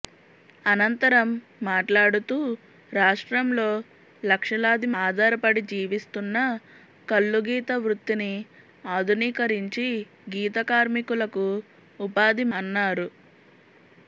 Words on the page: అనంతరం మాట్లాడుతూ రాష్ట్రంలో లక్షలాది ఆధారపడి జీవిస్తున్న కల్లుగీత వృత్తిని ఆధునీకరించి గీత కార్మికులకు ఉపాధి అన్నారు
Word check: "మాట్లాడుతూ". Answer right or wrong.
right